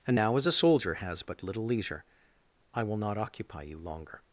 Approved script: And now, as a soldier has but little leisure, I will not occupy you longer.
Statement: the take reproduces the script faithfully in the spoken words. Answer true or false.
true